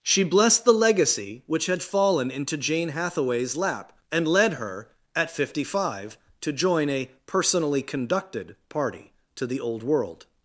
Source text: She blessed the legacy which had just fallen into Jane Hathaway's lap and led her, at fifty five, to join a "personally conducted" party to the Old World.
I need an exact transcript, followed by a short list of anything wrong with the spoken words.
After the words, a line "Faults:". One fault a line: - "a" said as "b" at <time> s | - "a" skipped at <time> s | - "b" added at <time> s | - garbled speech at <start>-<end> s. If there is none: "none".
She blessed the legacy which had fallen into Jane Hathaway's lap and led her, at fifty five, to join a "personally conducted" party to the Old World.
Faults:
- "just" skipped at 1.8 s